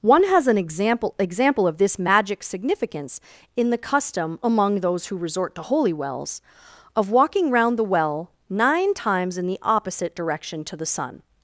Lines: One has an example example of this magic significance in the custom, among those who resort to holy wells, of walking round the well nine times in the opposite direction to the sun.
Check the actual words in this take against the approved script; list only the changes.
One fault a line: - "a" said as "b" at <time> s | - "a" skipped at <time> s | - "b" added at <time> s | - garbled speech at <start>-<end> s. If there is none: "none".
none